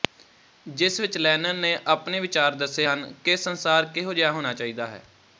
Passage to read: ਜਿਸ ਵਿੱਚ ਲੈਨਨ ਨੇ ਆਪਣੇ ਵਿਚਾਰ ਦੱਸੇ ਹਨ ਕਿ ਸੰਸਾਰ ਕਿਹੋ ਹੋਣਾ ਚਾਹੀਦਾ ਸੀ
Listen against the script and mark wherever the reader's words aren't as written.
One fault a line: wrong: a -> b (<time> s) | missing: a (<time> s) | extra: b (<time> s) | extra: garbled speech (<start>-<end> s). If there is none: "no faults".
extra: ਜਿਹਾ (4.1 s)
wrong: ਸੀ -> ਹੈ (4.9 s)